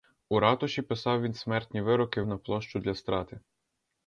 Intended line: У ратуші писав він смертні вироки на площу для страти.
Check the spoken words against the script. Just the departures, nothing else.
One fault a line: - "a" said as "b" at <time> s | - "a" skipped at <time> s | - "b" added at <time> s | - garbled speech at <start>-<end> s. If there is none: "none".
none